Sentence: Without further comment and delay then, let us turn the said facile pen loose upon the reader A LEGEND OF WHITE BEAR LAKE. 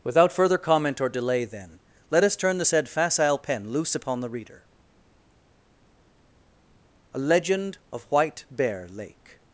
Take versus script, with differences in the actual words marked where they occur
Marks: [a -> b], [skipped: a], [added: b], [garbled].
Without further comment [and -> or] delay then, let us turn the said facile pen loose upon the reader A LEGEND OF WHITE BEAR LAKE.